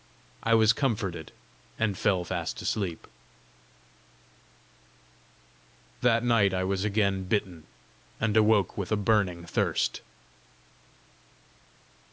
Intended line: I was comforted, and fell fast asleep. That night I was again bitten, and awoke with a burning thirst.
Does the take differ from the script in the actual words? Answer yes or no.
no